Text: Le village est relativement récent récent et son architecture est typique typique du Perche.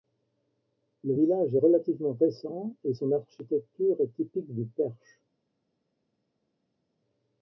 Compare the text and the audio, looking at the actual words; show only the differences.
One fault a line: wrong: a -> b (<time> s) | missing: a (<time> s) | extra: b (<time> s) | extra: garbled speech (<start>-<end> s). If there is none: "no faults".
missing: récent (2.7 s)
missing: typique (4.5 s)